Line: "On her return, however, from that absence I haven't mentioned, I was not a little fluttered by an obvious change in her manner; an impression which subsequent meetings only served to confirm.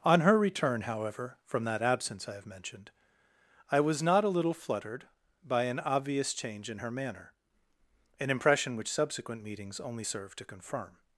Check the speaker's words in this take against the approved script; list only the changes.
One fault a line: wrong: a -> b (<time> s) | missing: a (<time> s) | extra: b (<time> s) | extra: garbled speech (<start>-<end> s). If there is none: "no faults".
wrong: haven't -> have (2.3 s)